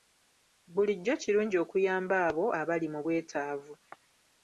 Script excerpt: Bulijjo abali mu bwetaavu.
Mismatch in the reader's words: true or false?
true